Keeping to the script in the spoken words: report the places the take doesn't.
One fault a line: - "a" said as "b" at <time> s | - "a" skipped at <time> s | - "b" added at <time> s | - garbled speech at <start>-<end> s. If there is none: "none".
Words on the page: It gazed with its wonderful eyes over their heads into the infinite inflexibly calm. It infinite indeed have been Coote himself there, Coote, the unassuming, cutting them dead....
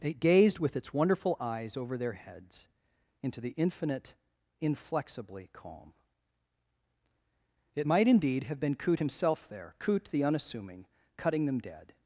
- "infinite" said as "might" at 7.8 s